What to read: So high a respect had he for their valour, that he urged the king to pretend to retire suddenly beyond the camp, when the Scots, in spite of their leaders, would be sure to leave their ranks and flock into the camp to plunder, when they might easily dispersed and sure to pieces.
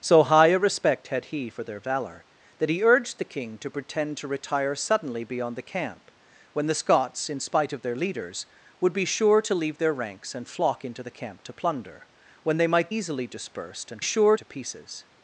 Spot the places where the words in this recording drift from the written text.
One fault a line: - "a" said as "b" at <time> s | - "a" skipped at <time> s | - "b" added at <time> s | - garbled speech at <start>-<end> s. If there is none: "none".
none